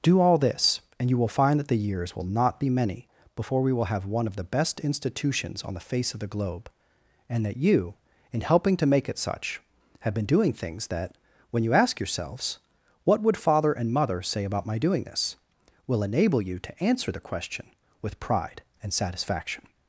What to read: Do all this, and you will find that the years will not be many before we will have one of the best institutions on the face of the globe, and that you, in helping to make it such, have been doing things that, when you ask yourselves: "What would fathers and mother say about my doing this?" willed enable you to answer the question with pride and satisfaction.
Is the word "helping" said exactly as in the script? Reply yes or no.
yes